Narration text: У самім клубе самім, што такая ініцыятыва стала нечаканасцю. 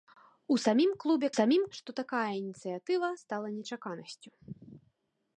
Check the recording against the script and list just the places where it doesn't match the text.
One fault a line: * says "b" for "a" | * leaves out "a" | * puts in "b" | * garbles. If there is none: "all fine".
all fine